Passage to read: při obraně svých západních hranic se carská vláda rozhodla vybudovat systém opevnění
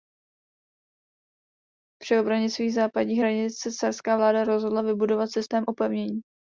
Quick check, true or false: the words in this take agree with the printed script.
true